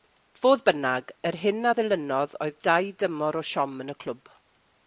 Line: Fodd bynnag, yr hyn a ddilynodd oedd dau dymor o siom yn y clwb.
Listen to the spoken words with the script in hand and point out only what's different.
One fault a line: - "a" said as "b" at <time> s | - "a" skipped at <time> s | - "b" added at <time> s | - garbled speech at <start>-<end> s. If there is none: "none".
none